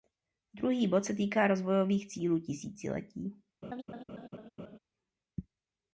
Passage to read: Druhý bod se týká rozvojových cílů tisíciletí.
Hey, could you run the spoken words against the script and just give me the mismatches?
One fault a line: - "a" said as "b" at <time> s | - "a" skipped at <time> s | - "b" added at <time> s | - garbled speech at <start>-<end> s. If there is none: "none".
none